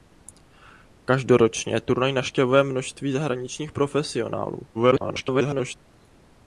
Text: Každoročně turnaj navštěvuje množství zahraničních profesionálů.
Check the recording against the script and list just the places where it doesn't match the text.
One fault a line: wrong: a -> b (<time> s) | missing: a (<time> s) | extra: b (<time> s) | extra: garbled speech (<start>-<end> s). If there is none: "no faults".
extra: garbled speech (4.7-5.8 s)